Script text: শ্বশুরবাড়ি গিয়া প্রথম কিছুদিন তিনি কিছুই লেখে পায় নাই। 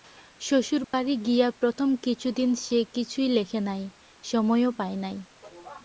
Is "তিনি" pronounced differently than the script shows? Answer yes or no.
yes